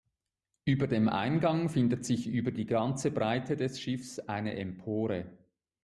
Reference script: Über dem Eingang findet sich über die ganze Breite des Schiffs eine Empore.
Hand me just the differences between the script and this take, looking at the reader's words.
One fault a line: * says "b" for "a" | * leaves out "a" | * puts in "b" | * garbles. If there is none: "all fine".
all fine